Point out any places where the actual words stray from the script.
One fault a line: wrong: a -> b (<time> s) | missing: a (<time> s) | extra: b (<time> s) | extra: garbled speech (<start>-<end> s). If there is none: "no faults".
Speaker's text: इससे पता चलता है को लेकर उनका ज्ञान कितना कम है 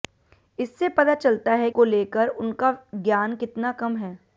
no faults